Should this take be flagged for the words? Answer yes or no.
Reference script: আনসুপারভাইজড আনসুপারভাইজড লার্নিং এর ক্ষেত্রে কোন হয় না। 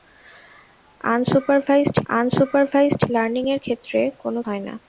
no